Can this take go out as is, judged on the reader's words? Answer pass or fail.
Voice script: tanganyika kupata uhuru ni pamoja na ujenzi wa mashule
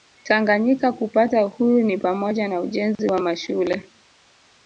pass